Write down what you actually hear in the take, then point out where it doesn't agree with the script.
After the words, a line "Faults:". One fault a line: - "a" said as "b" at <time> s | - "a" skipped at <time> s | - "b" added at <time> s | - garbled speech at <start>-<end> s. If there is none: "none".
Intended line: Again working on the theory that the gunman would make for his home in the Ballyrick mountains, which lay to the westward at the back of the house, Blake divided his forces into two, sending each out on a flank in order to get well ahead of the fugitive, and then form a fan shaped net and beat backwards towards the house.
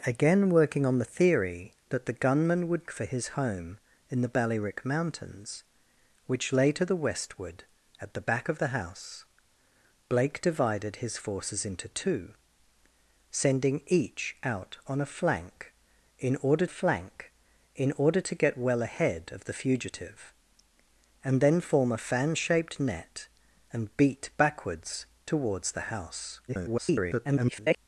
Again working on the theory that the gunman would for his home in the Ballyrick mountains, which lay to the westward at the back of the house, Blake divided his forces into two, sending each out on a flank in order flank in order to get well ahead of the fugitive, and then form a fan shaped net and beat backwards towards the house. [garbled]
Faults:
- "make" skipped at 2.9 s
- "flank in order" added at 16.7 s
- garbled speech at 26.5-27.8 s